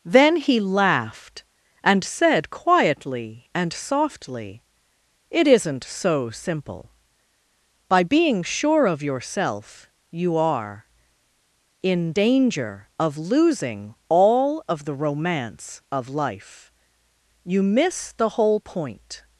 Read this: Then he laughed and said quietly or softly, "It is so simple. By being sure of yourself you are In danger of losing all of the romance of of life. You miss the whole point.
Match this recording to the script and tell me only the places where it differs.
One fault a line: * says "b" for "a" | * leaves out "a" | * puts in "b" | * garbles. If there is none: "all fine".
* says "and" for "or"
* says "isn't" for "is"
* leaves out "of"